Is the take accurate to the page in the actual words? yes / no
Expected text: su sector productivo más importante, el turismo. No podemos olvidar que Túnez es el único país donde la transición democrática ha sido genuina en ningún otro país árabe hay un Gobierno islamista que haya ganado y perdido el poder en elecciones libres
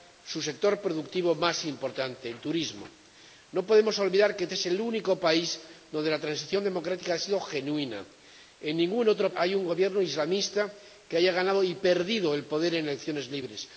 no